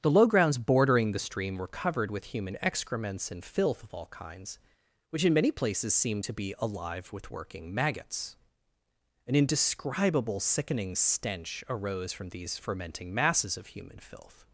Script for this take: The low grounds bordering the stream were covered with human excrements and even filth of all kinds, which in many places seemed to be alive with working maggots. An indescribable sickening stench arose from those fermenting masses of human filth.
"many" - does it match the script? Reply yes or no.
yes